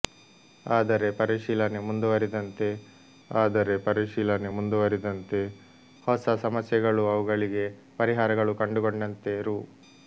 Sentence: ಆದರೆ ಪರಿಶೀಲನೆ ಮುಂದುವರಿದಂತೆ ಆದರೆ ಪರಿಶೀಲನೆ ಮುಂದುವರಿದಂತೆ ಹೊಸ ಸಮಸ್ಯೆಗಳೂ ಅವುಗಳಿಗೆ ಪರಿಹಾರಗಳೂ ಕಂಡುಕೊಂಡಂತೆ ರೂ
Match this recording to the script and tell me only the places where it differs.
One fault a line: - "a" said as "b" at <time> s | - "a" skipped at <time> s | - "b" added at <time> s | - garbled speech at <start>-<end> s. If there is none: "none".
none